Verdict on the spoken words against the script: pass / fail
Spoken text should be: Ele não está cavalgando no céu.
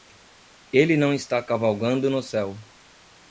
pass